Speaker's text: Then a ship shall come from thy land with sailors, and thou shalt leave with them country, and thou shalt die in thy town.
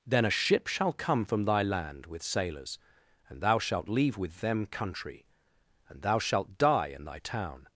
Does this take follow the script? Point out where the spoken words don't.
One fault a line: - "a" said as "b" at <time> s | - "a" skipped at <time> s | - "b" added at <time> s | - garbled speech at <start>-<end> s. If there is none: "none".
none